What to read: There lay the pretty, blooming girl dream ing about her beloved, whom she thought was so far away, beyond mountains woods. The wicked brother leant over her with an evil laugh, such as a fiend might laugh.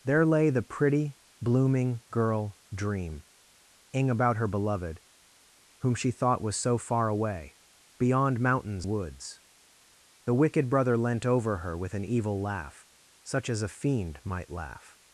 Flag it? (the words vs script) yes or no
no